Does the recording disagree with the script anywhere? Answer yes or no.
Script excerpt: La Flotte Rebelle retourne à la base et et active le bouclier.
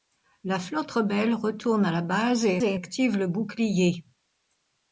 no